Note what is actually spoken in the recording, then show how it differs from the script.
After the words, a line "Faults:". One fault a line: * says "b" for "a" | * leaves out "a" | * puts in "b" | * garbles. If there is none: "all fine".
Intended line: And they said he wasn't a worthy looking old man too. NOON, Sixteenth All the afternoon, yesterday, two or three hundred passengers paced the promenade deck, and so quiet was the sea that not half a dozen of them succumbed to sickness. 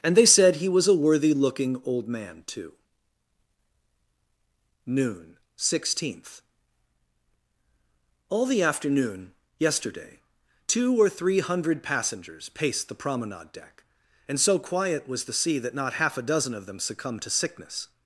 And they said he was a worthy looking old man too. NOON, Sixteenth All the afternoon, yesterday, two or three hundred passengers paced the promenade deck, and so quiet was the sea that not half a dozen of them succumbed to sickness.
Faults:
* says "was" for "wasn't"